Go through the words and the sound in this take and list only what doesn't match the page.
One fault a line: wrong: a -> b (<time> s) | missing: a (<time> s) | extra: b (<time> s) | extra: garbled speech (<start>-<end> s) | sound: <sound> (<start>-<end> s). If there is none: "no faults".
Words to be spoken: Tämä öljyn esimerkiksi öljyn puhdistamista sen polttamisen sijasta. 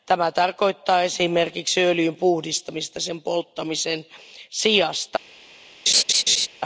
wrong: öljyn -> tarkoittaa (0.3 s)
sound: laugh (5.9-6.5 s)